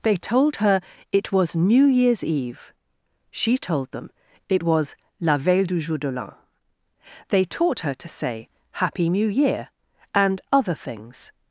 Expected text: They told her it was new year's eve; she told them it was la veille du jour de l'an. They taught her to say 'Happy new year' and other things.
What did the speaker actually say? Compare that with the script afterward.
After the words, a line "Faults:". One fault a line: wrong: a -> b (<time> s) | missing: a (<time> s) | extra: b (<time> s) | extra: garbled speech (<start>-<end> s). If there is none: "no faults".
They told her it was new year's eve; she told them it was la veille du jour de l'an. They taught her to say 'Happy new year' and other things.
Faults:
no faults